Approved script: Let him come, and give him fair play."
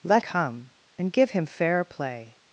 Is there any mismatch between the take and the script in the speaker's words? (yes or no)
yes